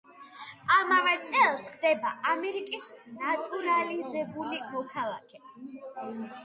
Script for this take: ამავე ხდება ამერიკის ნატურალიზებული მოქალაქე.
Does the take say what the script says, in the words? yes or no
no